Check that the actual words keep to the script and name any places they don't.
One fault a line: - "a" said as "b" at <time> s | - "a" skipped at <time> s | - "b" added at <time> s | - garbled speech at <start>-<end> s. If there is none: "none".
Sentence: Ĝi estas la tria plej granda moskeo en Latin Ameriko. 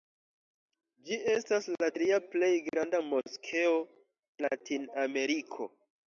- "en" skipped at 3.8 s